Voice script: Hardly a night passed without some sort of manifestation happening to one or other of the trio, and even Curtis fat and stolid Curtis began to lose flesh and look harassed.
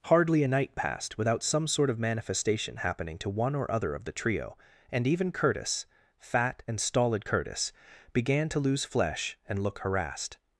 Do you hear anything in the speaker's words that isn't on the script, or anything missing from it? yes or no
no